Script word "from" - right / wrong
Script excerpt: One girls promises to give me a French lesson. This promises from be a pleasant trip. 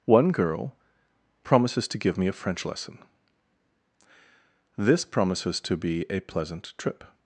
wrong